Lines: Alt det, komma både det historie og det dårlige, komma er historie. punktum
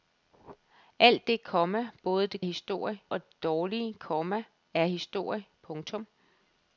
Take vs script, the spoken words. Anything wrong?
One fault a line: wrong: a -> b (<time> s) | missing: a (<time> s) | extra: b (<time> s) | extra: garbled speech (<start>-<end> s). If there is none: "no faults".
no faults